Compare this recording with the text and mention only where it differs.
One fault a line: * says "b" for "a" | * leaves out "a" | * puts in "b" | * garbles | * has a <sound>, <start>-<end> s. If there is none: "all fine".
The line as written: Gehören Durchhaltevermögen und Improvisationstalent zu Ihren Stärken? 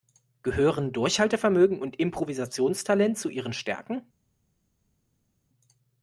all fine